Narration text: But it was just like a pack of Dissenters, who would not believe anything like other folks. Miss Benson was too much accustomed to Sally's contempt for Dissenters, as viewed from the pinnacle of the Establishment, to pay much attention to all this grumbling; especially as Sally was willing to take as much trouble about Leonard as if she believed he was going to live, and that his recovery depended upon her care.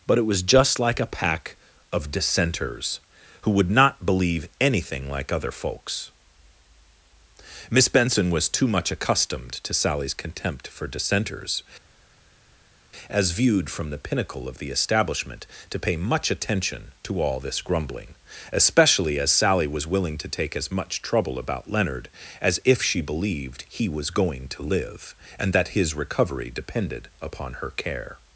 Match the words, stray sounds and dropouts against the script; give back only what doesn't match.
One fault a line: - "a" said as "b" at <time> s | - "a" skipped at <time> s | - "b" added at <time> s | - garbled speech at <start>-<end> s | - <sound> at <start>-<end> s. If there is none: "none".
none